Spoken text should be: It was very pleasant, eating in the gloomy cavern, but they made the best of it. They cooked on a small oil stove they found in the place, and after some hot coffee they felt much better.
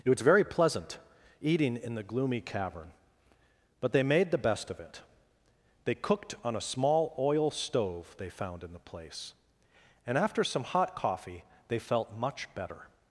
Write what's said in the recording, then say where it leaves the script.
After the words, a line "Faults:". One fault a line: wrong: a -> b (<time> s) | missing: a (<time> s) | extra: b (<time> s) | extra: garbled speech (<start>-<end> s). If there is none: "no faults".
It was very pleasant, eating in the gloomy cavern, but they made the best of it. They cooked on a small oil stove they found in the place, and after some hot coffee they felt much better.
Faults:
no faults